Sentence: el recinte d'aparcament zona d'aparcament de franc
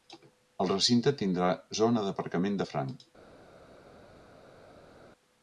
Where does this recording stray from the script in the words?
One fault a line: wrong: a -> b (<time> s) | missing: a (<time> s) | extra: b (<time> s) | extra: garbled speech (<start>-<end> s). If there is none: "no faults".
wrong: d'aparcament -> tindrà (1.2 s)